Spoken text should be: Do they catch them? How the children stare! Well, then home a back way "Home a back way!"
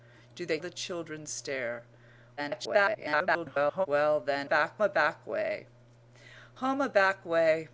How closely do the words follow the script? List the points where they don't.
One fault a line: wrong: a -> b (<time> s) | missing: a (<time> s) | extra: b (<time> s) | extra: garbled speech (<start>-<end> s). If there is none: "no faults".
missing: catch them How (0.6 s)
extra: garbled speech (2.4-3.9 s)
wrong: home -> back (4.4 s)